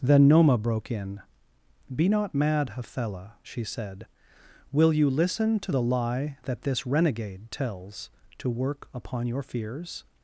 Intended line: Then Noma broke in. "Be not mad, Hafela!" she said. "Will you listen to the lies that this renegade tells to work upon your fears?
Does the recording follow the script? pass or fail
fail